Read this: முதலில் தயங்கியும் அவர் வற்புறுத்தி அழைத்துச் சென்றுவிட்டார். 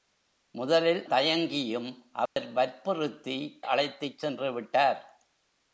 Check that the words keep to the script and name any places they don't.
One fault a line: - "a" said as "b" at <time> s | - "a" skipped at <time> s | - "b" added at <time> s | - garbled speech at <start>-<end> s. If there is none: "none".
none